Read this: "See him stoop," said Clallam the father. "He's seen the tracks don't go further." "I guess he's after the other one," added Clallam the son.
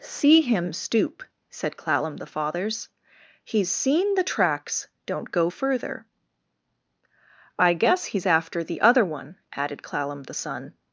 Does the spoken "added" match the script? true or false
true